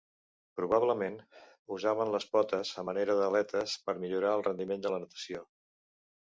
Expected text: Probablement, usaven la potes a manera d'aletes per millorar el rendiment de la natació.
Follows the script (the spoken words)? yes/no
no